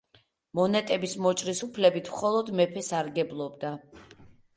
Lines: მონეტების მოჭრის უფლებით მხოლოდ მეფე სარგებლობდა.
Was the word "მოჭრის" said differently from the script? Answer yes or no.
no